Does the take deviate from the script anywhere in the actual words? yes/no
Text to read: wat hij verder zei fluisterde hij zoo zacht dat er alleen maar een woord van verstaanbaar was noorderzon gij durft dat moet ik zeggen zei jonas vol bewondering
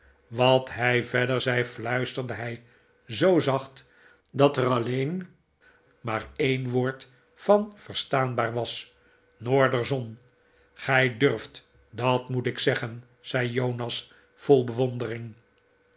no